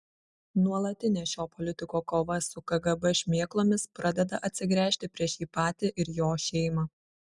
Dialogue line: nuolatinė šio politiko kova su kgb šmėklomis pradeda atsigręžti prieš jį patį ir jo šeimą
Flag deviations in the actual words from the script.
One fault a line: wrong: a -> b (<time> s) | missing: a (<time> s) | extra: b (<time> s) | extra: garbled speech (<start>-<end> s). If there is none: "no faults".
no faults